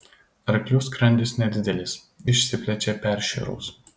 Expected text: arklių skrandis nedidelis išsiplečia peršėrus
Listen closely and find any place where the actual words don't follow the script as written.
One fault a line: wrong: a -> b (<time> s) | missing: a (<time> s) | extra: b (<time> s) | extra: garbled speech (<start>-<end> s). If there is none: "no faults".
no faults